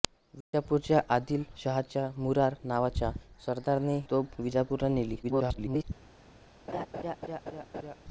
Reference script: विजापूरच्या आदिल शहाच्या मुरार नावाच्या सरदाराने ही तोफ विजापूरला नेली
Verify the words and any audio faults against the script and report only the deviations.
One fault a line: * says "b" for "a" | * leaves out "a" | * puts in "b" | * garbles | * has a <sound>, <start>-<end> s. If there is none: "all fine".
* has a dropout, 0.4-0.5 s
* leaves out "ही"
* garbles
* has a laugh, 6.7-8.0 s